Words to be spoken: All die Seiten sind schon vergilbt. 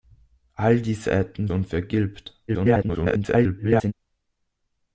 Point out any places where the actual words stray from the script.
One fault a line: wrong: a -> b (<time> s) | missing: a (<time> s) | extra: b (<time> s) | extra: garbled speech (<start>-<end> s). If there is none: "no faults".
missing: sind (1.5 s)
extra: garbled speech (2.5-3.9 s)